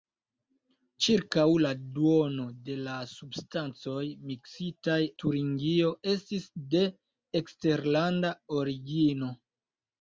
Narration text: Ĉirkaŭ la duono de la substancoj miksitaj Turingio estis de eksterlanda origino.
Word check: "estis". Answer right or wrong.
right